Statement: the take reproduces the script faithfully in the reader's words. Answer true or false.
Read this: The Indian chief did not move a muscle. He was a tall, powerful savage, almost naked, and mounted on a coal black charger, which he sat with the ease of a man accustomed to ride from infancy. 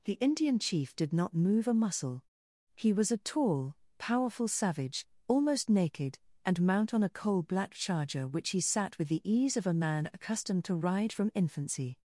false